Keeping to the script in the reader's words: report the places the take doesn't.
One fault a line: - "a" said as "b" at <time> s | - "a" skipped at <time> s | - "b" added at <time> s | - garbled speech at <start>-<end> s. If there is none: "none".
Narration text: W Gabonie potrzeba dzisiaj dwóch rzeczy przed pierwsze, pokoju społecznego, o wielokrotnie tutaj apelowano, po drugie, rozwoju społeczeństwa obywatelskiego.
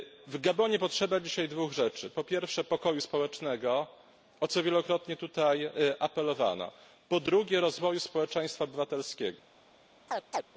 - "przed" said as "po" at 2.1 s
- "co" added at 4.5 s